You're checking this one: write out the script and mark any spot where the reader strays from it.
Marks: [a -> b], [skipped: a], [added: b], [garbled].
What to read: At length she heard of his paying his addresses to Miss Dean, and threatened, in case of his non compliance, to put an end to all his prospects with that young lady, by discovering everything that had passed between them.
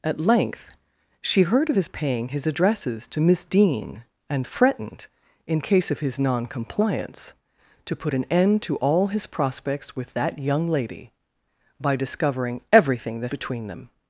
At length she heard of his paying his addresses to Miss Dean, and threatened, in case of his non compliance, to put an end to all his prospects with that young lady, by discovering everything that [skipped: had passed] between them.